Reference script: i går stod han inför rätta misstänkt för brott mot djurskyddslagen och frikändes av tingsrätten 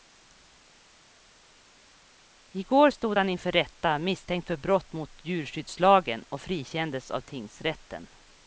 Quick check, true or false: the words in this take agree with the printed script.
true